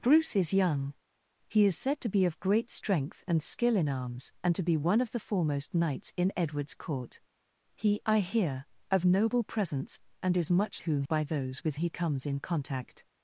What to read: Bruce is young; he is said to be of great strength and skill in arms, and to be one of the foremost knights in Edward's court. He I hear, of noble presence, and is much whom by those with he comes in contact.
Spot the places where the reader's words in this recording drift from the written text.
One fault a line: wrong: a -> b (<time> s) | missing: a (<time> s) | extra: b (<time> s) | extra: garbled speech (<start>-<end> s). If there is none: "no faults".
no faults